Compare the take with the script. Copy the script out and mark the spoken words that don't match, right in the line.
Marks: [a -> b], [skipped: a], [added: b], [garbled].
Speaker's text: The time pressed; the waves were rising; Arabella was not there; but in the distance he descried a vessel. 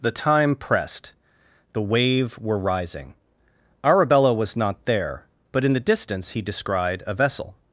The time pressed; the [waves -> wave] were rising; Arabella was not there; but in the distance he descried a vessel.